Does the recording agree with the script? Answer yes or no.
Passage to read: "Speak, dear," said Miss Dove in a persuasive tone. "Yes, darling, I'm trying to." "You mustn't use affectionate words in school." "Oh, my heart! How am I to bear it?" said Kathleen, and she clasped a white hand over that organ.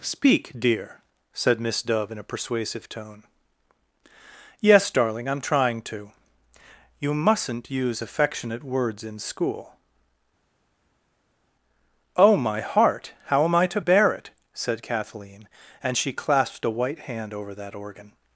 yes